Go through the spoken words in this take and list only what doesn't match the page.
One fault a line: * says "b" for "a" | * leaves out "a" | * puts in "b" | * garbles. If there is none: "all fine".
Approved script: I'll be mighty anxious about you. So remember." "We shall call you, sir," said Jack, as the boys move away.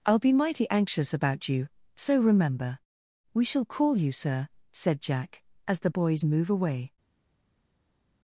all fine